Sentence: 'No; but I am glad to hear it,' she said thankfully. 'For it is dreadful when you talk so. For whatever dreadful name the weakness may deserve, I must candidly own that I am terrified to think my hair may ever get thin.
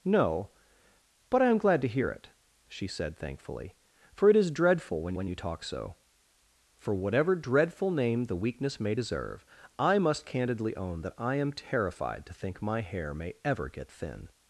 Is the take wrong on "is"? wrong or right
right